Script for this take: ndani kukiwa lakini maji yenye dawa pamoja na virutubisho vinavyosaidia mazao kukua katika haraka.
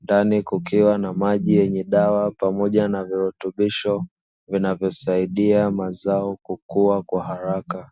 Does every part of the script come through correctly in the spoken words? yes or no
no